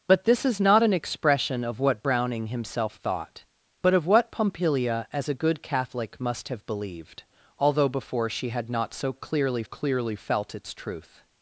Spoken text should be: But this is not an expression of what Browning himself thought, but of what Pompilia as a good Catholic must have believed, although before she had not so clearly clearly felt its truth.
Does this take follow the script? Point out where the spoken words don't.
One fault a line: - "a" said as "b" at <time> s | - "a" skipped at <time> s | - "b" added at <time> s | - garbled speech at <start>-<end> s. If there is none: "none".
none